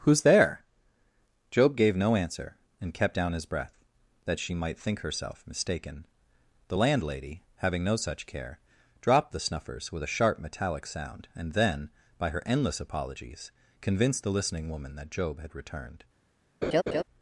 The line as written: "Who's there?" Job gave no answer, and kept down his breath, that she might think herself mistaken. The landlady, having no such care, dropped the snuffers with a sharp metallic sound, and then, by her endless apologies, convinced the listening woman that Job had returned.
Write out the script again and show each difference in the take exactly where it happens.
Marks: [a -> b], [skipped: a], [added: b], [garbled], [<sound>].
"Who's there?" Job gave no answer, and kept down his breath, that she might think herself mistaken. The landlady, having no such care, dropped the snuffers with a sharp metallic sound, and then, by her endless apologies, convinced the listening woman that Job had returned. [laugh]